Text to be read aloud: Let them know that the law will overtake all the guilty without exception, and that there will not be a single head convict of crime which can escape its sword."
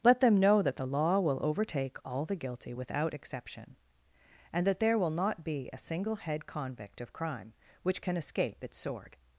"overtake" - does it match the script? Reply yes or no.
yes